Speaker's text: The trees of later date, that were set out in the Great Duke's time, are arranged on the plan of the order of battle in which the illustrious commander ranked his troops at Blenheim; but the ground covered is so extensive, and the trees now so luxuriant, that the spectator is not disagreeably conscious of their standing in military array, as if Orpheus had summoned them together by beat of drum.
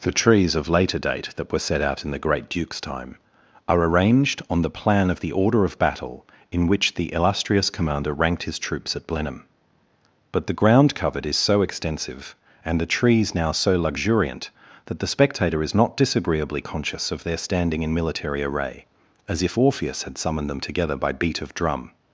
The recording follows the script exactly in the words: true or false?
true